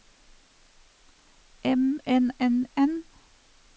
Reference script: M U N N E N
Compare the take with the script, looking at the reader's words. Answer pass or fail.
fail